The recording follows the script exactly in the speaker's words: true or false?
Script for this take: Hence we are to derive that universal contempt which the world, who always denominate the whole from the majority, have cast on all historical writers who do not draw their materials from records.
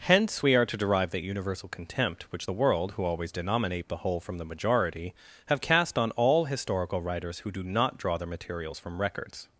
true